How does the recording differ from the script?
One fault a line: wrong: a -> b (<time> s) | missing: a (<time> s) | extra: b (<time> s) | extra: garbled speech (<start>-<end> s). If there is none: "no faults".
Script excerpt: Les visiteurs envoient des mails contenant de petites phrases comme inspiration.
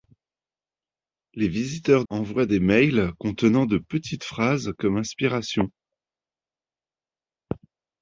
no faults